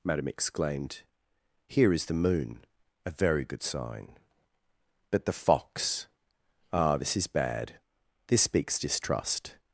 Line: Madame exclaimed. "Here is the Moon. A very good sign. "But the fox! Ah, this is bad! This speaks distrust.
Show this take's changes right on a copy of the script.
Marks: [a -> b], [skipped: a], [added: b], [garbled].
Madame exclaimed. "Here is the Moon. A very good sign. "But the fox! Ah, this is bad! This speaks distrust.